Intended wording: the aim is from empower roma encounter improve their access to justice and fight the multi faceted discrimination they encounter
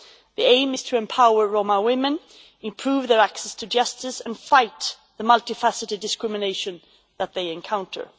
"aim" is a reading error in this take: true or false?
false